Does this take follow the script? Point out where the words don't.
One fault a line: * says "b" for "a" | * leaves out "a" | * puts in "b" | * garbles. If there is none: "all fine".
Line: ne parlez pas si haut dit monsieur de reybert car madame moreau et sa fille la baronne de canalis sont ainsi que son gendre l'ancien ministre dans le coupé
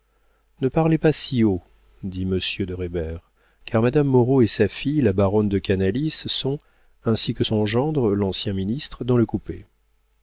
all fine